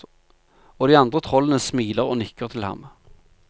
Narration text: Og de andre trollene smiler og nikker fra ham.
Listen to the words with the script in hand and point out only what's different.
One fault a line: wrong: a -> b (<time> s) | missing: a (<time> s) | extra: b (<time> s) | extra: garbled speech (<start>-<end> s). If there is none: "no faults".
wrong: fra -> til (2.5 s)